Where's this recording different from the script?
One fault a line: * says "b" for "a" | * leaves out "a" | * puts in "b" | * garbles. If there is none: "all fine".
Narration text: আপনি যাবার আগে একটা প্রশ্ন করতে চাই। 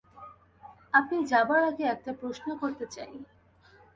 all fine